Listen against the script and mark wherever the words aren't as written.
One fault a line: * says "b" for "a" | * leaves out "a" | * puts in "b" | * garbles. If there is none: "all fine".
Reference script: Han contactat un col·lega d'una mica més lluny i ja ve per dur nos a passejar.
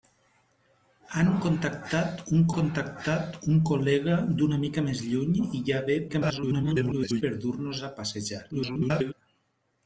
* puts in "contactat un"
* garbles
* garbles